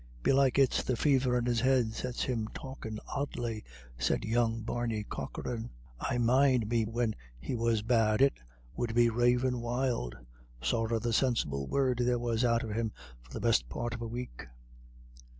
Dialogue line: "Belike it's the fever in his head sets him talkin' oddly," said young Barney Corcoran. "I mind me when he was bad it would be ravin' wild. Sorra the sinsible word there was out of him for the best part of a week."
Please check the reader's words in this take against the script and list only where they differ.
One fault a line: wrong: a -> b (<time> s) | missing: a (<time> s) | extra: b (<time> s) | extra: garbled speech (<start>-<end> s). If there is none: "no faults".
no faults